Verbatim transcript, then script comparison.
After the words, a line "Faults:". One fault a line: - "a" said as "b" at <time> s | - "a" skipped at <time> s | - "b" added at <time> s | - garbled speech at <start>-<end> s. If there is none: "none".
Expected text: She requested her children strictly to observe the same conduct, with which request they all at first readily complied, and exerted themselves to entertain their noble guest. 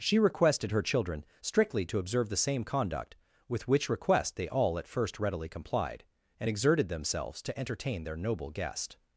She requested her children strictly to observe the same conduct, with which request they all at first readily complied, and exerted themselves to entertain their noble guest.
Faults:
none